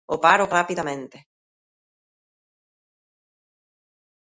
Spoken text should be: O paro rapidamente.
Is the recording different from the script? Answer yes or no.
no